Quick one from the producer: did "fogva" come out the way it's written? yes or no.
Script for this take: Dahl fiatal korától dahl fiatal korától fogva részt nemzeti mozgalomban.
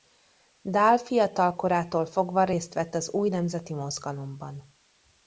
no